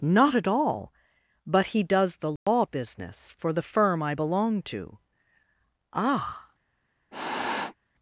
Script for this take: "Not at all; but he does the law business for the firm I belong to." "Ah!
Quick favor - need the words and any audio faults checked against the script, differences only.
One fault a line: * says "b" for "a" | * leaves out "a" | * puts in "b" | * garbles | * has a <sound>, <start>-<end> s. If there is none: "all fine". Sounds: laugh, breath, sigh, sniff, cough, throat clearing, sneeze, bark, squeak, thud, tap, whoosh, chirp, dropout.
* has a dropout, 2.4-2.5 s
* has a sniff, 7.1-7.7 s